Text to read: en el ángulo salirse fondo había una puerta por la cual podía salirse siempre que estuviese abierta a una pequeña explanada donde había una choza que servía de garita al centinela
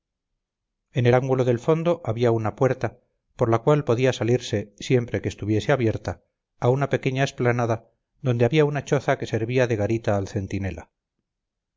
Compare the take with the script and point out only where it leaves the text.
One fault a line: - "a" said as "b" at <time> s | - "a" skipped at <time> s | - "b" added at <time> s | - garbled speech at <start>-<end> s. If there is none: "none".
- "salirse" said as "del" at 1.4 s